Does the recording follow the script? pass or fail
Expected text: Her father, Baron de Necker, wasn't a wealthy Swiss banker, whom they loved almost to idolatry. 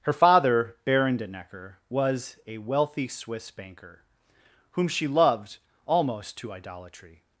fail